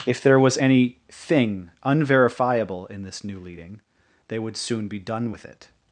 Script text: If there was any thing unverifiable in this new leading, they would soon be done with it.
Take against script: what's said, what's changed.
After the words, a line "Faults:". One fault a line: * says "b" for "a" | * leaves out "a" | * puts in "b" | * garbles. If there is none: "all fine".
If there was any thing unverifiable in this new leading, they would soon be done with it.
Faults:
all fine